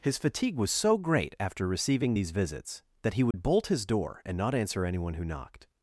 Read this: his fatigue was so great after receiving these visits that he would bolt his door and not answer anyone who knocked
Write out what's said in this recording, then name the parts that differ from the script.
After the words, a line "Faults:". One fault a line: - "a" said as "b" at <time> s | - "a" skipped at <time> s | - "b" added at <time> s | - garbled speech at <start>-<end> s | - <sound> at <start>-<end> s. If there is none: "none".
his fatigue was so great after receiving these visits that he would bolt his door and not answer anyone who knocked
Faults:
- dropout at 3.3-3.3 s